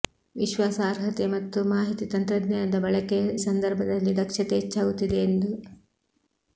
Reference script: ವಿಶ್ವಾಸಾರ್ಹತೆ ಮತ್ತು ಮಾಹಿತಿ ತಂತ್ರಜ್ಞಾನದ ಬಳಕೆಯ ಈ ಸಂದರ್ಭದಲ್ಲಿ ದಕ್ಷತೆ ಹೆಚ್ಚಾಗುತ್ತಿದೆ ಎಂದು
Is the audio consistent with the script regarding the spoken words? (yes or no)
no